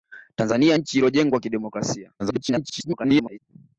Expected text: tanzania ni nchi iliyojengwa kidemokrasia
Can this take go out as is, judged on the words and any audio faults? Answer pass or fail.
fail